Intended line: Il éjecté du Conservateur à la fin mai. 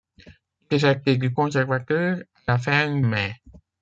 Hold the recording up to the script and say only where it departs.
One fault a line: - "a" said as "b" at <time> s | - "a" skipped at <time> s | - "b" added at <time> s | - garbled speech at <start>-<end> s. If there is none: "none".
none